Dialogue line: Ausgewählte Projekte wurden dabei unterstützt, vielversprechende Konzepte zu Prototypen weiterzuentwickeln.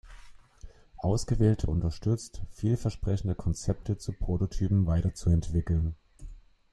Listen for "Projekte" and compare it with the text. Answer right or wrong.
wrong